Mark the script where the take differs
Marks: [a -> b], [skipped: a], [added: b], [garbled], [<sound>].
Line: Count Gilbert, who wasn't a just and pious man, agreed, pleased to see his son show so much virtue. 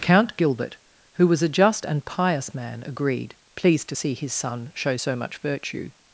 Count Gilbert, who [wasn't -> was] a just and pious man, agreed, pleased to see his son show so much virtue.